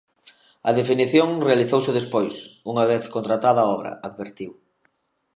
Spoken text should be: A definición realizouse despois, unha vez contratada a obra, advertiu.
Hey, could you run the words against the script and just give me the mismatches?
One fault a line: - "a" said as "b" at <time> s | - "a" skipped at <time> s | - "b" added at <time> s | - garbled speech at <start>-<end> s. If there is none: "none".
none